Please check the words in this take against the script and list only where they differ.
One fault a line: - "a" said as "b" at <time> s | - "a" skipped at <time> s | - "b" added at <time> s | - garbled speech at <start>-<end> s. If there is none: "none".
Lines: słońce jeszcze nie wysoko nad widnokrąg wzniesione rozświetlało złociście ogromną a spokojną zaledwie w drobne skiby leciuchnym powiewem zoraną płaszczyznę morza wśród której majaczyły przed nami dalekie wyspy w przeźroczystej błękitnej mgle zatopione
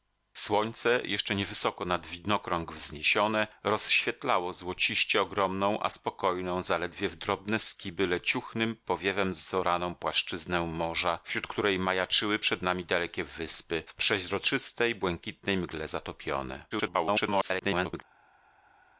- garbled speech at 16.7-18.0 s